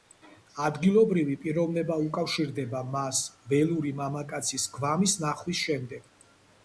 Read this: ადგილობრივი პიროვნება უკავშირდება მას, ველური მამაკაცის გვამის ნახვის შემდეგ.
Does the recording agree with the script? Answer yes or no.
yes